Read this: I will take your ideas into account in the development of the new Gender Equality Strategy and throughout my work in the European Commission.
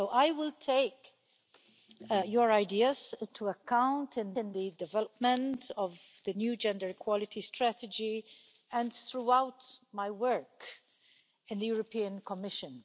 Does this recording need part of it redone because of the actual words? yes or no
yes